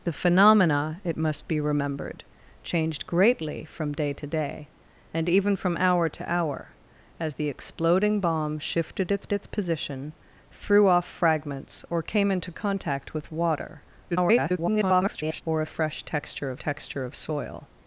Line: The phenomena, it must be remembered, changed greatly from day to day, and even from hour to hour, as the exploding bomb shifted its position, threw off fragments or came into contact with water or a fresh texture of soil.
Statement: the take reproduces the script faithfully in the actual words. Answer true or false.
false